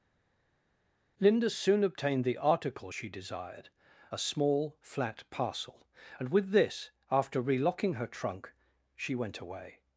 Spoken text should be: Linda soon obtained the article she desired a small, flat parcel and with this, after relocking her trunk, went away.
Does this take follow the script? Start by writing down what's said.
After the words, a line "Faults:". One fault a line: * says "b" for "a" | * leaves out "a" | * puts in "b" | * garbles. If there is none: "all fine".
Linda soon obtained the article she desired a small, flat parcel and with this, after relocking her trunk, she went away.
Faults:
* puts in "she"